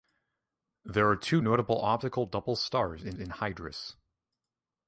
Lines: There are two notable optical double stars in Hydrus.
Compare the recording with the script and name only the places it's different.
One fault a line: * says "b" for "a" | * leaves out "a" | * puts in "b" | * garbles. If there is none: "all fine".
* puts in "in"